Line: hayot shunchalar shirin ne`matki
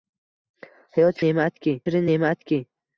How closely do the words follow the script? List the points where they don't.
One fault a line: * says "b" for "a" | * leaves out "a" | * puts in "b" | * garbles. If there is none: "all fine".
* says "ne`matki" for "shunchalar"